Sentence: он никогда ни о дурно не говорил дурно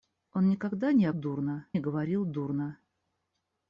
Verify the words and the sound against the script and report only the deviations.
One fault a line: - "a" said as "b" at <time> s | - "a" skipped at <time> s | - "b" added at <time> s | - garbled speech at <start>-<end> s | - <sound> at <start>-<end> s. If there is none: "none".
none